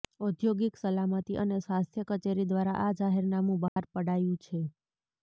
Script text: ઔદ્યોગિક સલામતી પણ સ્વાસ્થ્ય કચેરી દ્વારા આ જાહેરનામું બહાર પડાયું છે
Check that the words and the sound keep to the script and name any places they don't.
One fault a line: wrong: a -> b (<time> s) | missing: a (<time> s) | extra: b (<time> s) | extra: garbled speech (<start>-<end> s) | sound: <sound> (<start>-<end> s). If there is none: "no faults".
wrong: પણ -> અને (1.4 s)
sound: dropout (3.7-3.8 s)